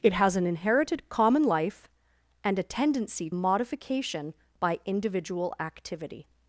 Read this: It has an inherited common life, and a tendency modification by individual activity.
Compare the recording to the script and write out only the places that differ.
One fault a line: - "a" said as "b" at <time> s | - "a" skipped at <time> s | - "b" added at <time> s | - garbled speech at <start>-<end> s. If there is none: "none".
none